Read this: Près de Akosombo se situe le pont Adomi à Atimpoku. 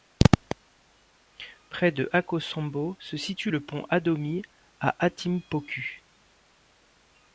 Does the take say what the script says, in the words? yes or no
yes